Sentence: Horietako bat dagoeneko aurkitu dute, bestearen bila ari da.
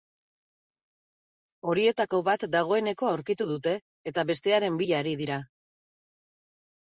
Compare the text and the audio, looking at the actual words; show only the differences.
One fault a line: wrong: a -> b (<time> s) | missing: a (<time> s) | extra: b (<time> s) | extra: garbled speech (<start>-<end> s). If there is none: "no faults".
extra: eta (4.2 s)
wrong: da -> dira (5.2 s)